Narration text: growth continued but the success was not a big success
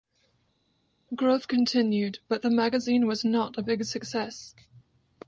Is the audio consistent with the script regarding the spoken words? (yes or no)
no